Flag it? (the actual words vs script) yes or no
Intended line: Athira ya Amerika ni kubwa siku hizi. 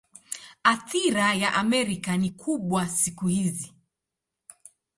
no